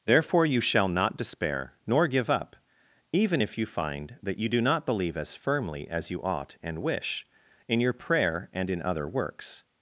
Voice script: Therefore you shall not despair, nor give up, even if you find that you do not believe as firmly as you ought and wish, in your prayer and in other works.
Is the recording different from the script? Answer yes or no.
no